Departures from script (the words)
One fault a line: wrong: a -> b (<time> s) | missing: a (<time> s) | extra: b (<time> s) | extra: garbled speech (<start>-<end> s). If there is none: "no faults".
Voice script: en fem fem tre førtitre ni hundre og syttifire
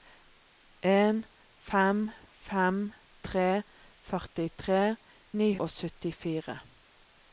missing: hundre (5.5 s)